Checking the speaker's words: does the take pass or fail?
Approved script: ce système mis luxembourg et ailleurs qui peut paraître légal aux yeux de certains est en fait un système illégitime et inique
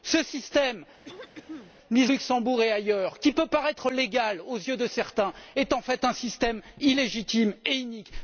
pass